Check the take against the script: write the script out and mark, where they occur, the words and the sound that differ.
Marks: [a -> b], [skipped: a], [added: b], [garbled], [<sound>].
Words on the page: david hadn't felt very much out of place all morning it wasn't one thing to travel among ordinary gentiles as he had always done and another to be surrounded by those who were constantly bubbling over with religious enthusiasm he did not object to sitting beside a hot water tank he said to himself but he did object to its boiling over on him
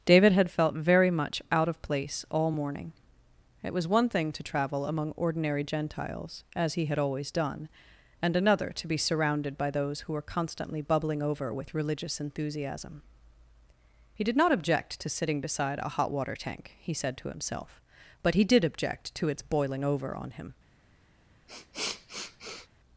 david [hadn't -> had] felt very much out of place all morning it [wasn't -> was] one thing to travel among ordinary gentiles as he had always done and another to be surrounded by those who were constantly bubbling over with religious enthusiasm he did not object to sitting beside a hot water tank he said to himself but he did object to its boiling over on him [sniff]